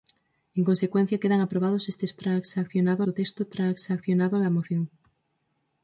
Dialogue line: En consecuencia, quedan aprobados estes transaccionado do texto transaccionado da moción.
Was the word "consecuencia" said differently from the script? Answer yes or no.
no